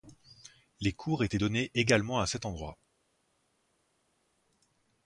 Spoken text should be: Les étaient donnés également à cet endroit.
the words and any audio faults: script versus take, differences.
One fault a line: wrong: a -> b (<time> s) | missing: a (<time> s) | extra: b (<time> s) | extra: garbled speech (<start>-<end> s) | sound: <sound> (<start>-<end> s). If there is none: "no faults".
extra: cours (0.9 s)